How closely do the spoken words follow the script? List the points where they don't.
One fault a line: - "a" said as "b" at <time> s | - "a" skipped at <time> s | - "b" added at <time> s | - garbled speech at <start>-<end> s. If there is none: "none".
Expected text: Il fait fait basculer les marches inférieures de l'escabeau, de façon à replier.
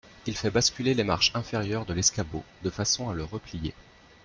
- "fait" skipped at 0.5 s
- "le" added at 3.1 s